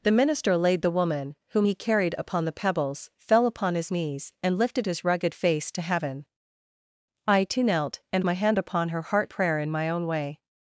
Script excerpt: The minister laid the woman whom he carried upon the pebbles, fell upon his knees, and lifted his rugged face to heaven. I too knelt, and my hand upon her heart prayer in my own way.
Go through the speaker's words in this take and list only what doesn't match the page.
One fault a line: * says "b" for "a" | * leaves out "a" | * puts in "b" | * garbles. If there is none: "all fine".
all fine